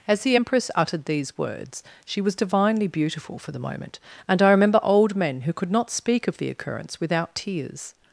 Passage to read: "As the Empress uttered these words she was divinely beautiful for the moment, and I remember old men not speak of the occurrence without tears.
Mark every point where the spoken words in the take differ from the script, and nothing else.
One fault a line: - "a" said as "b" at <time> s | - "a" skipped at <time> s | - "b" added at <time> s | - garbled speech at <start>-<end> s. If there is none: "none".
- "who could" added at 5.4 s